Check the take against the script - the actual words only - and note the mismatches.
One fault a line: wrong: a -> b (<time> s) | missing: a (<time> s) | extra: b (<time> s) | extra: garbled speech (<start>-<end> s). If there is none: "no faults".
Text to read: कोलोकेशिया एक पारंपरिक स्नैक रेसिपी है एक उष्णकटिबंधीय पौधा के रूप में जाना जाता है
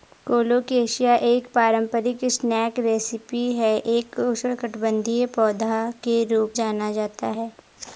missing: में (6.5 s)